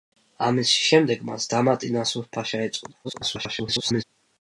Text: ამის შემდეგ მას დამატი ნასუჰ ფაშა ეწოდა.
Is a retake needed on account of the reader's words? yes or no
yes